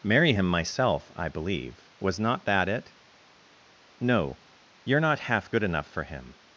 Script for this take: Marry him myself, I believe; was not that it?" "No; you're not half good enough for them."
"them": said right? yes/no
no